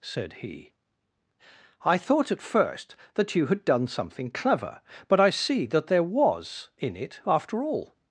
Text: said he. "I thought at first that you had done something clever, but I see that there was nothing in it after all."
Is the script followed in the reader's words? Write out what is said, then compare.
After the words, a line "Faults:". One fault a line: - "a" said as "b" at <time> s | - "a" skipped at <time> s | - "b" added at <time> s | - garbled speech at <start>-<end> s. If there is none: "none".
said he. "I thought at first that you had done something clever, but I see that there was in it after all."
Faults:
- "nothing" skipped at 6.7 s